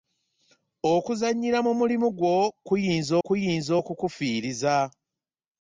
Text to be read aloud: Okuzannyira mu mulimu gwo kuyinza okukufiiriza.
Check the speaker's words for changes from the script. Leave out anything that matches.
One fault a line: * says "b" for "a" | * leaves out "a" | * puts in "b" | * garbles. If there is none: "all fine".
* puts in "kuyinza"